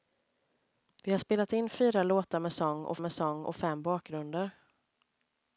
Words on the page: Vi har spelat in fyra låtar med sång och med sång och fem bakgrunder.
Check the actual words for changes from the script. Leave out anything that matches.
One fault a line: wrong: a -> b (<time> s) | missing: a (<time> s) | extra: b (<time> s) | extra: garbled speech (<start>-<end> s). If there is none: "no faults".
no faults